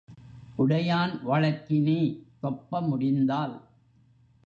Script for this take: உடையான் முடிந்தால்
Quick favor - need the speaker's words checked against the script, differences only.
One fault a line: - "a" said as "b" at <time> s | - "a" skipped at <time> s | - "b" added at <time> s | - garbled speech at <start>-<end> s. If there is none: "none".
- "வழக்கினி தொப்ப" added at 1.2 s